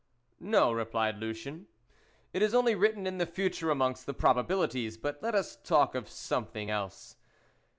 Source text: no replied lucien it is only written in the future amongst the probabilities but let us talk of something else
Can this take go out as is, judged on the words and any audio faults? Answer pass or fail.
pass